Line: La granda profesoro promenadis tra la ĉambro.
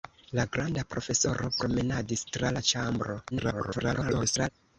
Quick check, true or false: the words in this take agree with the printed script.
false